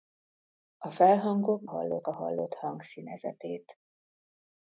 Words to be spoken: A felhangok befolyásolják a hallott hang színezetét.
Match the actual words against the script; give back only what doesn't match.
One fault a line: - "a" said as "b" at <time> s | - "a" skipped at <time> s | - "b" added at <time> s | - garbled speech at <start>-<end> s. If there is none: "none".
- "befolyásolják" said as "hallott" at 1.6 s